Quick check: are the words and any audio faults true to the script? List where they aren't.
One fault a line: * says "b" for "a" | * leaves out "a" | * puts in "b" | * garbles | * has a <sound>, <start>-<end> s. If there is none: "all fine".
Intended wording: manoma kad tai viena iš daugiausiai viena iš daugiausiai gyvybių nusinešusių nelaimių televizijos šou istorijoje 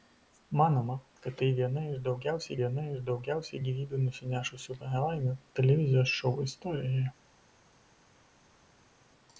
all fine